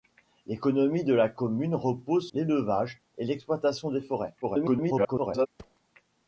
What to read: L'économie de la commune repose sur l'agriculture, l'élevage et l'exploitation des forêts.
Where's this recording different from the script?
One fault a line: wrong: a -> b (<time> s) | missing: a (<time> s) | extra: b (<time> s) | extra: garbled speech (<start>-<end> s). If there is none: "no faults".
missing: sur l'agriculture (2.3 s)
extra: garbled speech (4.4-5.5 s)